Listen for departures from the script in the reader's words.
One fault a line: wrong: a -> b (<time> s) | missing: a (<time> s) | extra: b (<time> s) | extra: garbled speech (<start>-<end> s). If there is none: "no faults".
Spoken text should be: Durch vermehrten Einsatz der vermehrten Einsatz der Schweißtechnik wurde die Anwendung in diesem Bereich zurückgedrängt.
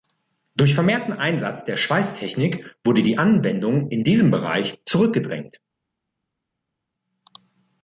missing: vermehrten Einsatz der (1.8 s)